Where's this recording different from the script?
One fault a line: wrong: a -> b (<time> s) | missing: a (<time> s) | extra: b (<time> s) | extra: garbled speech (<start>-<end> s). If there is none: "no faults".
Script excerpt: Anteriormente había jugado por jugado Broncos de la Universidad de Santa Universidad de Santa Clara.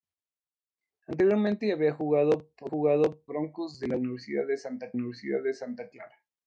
no faults